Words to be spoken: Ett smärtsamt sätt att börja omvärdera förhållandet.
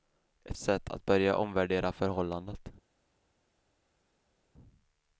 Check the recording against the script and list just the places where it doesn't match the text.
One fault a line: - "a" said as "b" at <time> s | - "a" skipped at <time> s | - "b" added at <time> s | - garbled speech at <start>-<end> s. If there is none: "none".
- "smärtsamt" skipped at 0.6 s